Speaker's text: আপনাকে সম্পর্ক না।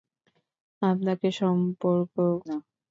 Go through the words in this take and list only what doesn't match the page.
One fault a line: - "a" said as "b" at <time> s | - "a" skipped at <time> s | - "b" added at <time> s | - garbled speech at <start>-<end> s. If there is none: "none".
none